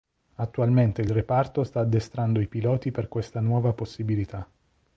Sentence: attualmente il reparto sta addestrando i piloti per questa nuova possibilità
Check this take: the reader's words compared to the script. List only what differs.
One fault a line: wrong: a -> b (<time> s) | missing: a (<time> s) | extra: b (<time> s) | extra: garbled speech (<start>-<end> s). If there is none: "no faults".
no faults